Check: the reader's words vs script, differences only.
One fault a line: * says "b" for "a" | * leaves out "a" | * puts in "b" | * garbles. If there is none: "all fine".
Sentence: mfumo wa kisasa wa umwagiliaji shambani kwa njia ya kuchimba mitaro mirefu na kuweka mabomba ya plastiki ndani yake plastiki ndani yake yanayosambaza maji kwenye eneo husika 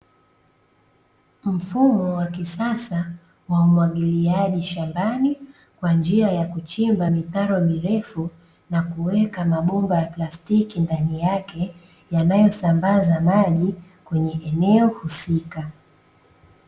* leaves out "plastiki ndani yake"